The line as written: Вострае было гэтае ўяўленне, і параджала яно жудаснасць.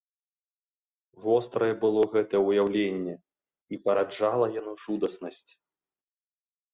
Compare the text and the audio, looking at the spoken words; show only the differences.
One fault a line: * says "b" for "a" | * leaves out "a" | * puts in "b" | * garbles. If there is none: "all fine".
all fine